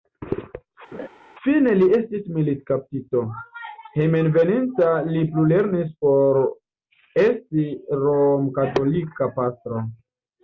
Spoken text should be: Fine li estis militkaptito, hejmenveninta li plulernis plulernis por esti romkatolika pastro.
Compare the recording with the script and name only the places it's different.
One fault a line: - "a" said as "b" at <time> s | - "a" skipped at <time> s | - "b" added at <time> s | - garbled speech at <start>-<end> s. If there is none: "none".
- "plulernis" skipped at 5.9 s